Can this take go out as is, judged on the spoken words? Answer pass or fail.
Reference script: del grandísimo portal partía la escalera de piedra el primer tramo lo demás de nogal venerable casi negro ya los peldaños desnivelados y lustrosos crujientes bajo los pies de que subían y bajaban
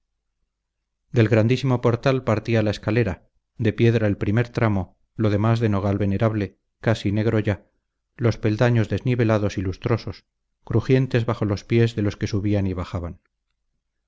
fail